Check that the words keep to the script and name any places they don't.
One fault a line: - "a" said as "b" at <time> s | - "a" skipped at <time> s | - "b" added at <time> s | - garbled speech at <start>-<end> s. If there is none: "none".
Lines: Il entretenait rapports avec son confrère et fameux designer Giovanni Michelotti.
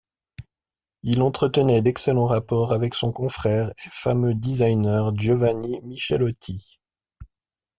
- "d'excellents" added at 1.8 s